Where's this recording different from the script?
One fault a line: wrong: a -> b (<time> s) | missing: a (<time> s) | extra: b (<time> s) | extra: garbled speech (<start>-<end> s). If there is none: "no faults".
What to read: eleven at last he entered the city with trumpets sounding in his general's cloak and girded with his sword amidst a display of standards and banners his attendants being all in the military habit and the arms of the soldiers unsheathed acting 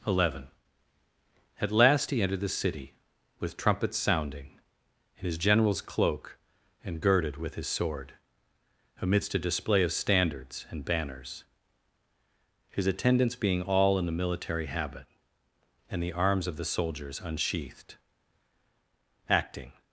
no faults